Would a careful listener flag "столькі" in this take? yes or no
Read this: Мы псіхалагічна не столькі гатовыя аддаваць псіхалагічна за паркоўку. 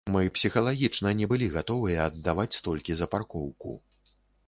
yes